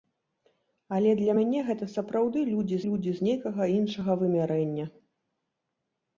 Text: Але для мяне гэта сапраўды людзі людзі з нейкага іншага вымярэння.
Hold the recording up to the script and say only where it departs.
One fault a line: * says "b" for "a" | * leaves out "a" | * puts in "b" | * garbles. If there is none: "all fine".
all fine